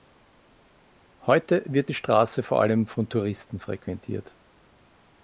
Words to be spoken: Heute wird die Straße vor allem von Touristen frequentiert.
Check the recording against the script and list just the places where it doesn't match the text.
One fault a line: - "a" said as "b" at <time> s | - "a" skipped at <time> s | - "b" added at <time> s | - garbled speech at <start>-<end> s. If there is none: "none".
none